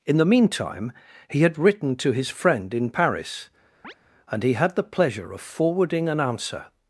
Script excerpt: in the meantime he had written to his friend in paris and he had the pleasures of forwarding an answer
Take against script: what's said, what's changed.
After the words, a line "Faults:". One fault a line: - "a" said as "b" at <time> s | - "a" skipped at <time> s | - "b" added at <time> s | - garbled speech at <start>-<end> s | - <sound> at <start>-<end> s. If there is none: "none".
in the meantime he had written to his friend in paris and he had the pleasure of forwarding an answer
Faults:
- chirp at 3.8-3.9 s
- "pleasures" said as "pleasure" at 4.9 s